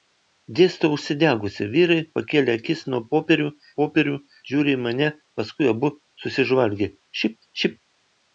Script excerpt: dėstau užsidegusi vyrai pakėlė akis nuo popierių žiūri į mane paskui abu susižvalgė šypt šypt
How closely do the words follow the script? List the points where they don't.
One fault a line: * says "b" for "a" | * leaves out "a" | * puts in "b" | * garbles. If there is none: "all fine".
* puts in "popierių"